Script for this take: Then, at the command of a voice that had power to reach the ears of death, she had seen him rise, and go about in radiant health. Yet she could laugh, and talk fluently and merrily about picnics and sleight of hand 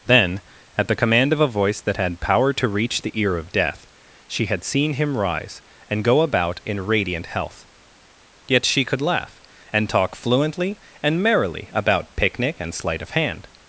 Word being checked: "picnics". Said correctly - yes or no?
no